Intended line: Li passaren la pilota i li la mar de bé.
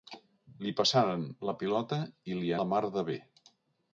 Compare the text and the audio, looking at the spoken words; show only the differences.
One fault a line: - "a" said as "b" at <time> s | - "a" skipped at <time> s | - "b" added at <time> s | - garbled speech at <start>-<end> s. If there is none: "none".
none